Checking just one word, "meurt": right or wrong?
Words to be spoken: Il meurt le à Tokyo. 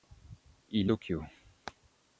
wrong